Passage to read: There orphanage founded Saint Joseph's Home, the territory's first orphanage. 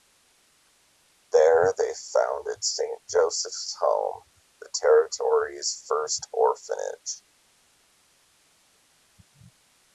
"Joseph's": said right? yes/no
yes